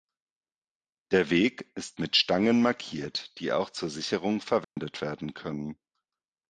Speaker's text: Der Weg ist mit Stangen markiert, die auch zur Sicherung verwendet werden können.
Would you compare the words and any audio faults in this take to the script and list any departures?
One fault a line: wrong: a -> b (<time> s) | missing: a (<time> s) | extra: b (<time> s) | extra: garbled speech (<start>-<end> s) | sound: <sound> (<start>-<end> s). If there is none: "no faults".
sound: dropout (4.6-4.8 s)